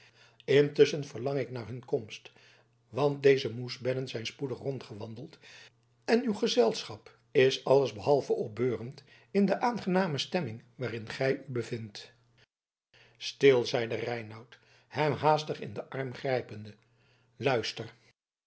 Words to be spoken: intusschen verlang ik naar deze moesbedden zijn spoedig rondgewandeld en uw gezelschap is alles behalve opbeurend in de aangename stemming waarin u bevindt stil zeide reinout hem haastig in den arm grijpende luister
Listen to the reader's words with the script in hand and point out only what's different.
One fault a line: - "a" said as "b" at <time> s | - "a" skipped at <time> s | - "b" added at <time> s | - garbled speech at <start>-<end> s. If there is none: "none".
- "hun komst want" added at 1.7 s
- "gij" added at 11.1 s